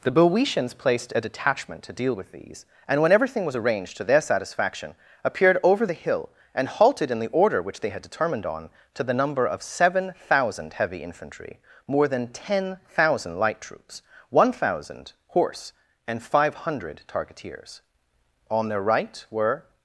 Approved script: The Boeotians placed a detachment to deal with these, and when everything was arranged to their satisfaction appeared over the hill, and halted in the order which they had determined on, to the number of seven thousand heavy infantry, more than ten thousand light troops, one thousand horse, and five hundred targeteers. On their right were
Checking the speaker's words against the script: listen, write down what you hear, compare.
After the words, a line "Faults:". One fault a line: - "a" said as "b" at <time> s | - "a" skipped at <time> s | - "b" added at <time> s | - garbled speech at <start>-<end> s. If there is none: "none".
The Boeotians placed a detachment to deal with these, and when everything was arranged to their satisfaction appeared over the hill, and halted in the order which they had determined on, to the number of seven thousand heavy infantry, more than ten thousand light troops, one thousand horse, and five hundred targeteers. On their right were
Faults:
none